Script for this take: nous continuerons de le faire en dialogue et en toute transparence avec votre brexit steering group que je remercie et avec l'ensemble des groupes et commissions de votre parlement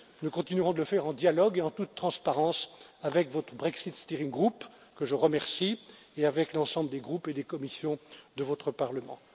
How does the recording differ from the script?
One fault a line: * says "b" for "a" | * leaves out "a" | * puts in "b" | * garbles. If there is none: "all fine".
* puts in "des"